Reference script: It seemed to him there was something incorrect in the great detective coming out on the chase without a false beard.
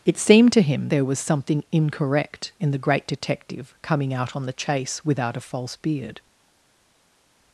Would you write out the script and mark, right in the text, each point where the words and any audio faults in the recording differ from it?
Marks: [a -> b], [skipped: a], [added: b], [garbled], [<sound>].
It seemed to him there was something incorrect in the great detective coming out on the chase without a false beard.